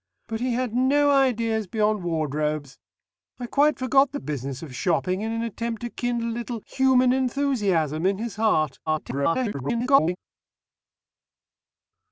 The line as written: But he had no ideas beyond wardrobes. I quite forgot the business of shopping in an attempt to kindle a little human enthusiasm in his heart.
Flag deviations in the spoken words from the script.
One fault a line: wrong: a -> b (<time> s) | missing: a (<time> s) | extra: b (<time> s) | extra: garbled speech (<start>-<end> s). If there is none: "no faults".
extra: garbled speech (8.9-10.2 s)